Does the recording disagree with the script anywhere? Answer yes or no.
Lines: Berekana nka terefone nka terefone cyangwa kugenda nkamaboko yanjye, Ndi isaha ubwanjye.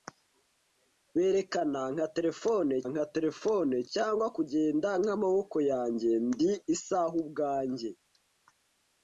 no